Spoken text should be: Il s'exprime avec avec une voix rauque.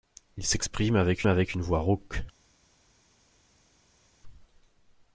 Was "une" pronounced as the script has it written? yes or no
yes